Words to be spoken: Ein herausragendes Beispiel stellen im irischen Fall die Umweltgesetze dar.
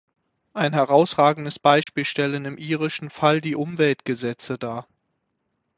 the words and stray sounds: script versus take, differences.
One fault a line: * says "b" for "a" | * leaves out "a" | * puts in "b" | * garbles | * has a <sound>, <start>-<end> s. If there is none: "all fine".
* has a dropout, 1.8-1.9 s